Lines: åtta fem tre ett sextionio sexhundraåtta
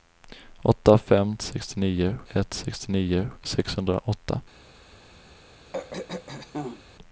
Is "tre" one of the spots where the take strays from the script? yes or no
yes